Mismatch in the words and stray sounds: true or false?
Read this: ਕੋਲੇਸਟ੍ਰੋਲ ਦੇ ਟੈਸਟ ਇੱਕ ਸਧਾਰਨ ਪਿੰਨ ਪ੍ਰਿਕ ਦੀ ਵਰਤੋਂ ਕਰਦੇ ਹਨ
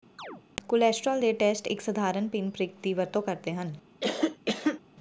true